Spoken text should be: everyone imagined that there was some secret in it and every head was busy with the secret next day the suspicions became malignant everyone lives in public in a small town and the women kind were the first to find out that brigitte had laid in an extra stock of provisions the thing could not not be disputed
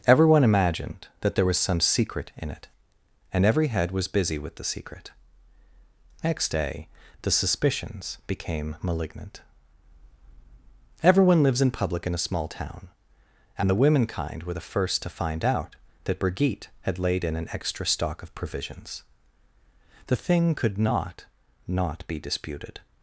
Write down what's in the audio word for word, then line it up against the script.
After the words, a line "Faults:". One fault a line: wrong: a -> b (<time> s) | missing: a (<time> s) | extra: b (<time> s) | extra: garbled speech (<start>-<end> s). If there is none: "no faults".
everyone imagined that there was some secret in it and every head was busy with the secret next day the suspicions became malignant everyone lives in public in a small town and the women kind were the first to find out that brigitte had laid in an extra stock of provisions the thing could not not be disputed
Faults:
no faults